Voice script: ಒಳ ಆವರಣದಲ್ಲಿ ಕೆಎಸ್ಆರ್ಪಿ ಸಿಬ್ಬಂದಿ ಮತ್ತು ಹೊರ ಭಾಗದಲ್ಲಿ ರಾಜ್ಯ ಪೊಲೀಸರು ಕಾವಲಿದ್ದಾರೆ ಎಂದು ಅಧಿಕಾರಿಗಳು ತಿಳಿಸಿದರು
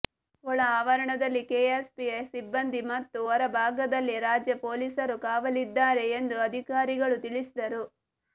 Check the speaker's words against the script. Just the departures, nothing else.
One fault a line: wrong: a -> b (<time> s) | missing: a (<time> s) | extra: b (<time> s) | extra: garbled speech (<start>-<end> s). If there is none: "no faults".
no faults